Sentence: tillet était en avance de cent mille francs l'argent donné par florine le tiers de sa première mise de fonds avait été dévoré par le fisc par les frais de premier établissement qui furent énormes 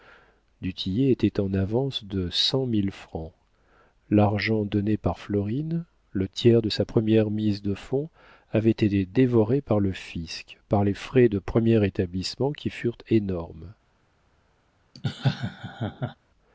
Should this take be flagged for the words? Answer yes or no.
no